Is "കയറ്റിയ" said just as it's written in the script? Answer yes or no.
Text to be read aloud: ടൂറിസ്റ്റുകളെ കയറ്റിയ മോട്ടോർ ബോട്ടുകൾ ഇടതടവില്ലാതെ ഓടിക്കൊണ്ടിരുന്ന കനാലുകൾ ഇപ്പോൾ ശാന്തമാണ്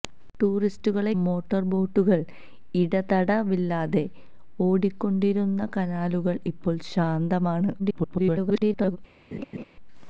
no